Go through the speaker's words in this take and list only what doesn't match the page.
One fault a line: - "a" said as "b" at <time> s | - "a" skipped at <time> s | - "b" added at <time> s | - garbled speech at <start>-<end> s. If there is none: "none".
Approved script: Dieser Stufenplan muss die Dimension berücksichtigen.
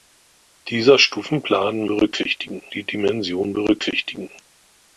- "muss" said as "berücksichtigen" at 1.8 s